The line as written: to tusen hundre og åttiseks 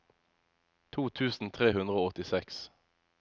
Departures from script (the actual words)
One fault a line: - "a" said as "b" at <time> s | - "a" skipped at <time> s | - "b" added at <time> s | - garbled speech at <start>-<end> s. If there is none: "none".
- "tre" added at 1.6 s